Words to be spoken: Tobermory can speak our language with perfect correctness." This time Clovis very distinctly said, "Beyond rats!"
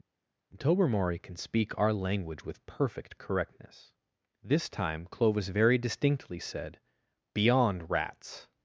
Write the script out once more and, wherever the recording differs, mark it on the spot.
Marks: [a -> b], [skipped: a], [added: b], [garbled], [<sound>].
Tobermory can speak our language with perfect correctness." This time Clovis very distinctly said, "Beyond rats!"